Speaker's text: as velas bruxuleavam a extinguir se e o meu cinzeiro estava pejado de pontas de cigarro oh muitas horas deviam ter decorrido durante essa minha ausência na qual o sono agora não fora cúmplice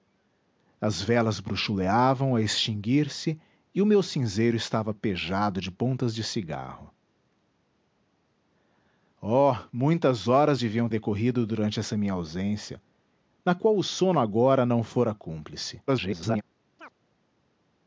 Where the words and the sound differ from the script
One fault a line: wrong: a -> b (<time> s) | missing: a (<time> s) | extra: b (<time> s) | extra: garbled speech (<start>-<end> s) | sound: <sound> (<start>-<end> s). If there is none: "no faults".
missing: ter (10.9 s)
extra: garbled speech (15.9-16.4 s)
sound: chirp (16.8-16.9 s)